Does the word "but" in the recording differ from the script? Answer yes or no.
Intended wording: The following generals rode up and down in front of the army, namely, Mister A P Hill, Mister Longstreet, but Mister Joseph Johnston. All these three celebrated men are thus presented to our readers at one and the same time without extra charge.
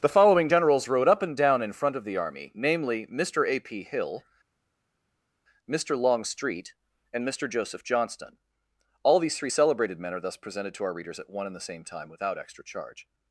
yes